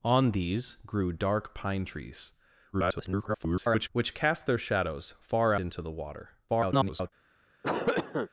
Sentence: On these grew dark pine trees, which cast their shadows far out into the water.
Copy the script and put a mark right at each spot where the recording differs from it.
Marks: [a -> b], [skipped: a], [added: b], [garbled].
On these grew dark pine trees, [garbled] which cast their shadows far [skipped: out] into the water. [garbled]